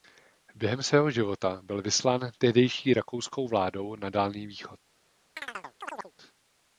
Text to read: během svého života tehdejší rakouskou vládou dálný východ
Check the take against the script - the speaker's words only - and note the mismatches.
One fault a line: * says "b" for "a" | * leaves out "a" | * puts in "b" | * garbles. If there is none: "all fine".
* puts in "byl vyslán"
* puts in "na"